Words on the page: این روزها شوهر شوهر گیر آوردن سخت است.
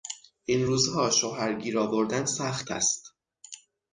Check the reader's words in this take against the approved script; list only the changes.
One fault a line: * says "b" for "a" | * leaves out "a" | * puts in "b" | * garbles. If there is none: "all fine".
* leaves out "شوهر"